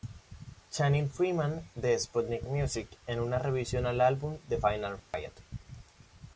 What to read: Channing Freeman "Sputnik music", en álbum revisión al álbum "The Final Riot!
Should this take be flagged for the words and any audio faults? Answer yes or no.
yes